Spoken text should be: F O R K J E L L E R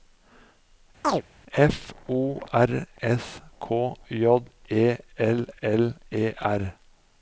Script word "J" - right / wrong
right